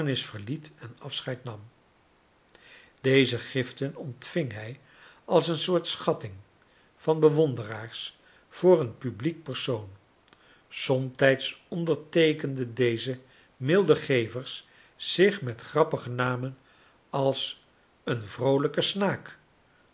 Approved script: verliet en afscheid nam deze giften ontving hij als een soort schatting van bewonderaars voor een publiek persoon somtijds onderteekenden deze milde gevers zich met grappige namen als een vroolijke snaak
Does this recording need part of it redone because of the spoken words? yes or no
no